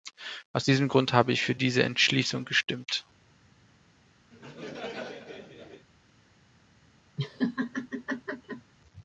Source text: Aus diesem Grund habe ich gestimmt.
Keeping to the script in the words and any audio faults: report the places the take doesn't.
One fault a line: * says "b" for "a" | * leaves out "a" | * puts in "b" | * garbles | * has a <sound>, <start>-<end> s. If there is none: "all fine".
* puts in "für diese Entschließung"
* has a laugh, 4.3-5.9 s
* has a laugh, 7.2-8.7 s